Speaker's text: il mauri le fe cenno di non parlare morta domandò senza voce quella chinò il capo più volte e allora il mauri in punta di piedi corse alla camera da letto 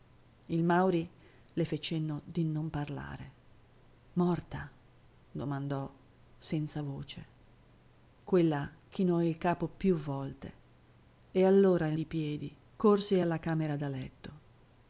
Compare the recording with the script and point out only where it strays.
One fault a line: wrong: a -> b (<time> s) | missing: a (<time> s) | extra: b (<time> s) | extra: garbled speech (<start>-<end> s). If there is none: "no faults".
missing: mauri in punta (12.0 s)